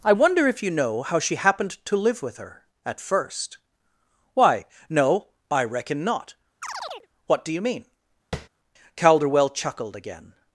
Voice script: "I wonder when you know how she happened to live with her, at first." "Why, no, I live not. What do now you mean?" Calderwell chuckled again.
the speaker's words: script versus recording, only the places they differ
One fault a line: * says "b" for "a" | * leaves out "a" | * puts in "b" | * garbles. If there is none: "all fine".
* says "if" for "when"
* says "reckon" for "live"
* leaves out "now"